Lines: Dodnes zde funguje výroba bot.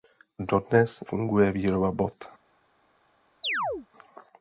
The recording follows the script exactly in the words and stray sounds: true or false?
false